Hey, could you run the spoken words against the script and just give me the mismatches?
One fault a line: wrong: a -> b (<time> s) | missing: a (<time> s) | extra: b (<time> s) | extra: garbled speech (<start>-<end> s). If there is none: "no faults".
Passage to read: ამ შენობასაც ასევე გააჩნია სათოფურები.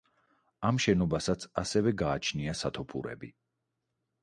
no faults